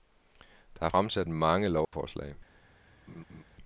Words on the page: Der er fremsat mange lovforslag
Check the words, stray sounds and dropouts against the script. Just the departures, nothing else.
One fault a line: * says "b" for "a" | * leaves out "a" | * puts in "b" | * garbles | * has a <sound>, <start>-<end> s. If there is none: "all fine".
* has a dropout, 1.8-1.9 s
* has a laugh, 3.1-3.4 s